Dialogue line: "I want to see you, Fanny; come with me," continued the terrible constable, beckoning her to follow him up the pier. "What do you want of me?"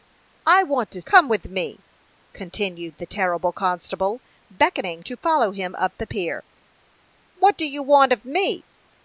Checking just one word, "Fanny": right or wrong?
wrong